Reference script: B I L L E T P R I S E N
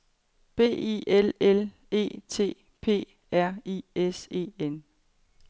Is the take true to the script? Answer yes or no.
yes